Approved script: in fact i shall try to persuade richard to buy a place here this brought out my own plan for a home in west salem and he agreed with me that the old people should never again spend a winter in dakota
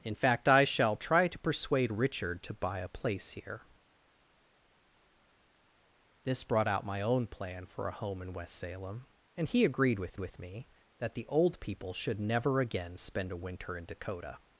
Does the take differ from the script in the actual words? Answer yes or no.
yes